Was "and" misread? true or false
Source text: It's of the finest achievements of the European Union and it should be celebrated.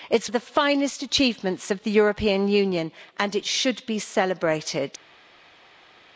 false